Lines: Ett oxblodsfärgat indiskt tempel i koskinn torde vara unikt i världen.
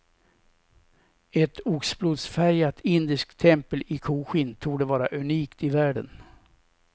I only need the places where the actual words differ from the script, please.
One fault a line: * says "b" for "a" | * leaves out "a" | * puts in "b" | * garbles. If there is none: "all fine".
all fine